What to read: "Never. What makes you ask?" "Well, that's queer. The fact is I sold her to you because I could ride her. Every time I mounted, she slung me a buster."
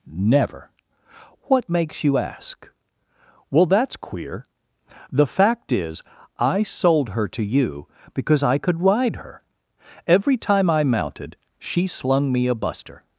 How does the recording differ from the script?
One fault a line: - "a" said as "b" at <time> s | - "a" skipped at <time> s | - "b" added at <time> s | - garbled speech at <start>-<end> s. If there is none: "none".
none